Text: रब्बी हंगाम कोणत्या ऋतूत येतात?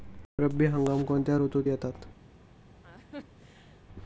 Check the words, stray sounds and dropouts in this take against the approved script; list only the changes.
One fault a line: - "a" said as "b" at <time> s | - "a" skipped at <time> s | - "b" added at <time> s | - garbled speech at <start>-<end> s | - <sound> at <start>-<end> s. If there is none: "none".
- laugh at 2.8-3.8 s